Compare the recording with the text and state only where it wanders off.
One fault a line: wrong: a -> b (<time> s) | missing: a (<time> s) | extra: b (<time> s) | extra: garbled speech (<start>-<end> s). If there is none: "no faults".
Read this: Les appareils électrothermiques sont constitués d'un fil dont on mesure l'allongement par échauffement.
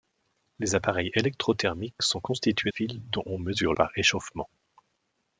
missing: d'un (2.7 s)
missing: l'allongement (3.7 s)